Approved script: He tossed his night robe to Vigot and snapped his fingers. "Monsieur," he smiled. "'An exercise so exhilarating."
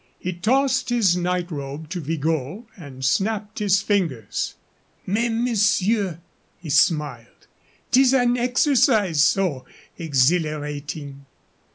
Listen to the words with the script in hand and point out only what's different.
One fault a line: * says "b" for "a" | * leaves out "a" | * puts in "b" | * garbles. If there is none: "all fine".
* puts in "Mais"
* puts in "Tis"